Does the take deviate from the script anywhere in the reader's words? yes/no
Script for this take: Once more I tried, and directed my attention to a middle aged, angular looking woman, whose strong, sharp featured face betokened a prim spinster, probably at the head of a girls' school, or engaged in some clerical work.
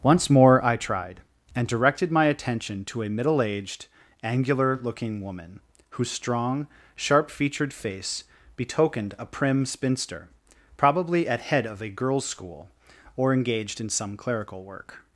yes